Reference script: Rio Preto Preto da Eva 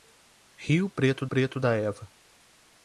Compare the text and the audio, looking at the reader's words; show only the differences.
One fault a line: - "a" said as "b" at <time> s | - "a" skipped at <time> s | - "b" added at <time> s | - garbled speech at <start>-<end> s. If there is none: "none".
none